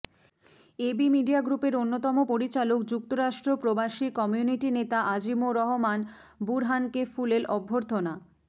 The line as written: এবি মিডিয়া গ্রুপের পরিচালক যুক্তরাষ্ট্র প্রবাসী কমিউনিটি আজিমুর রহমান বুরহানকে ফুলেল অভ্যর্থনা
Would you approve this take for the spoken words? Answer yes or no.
no